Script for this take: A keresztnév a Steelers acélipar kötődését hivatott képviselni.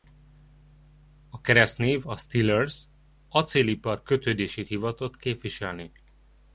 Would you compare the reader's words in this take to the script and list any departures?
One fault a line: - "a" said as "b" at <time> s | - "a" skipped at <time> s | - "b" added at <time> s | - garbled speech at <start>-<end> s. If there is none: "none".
none